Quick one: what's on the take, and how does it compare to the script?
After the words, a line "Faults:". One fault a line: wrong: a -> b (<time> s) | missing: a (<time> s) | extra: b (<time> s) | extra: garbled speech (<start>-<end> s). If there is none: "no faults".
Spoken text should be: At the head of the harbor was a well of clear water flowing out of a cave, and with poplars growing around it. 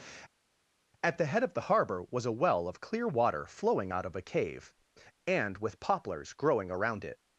At the head of the harbor was a well of clear water flowing out of a cave, and with poplars growing around it.
Faults:
no faults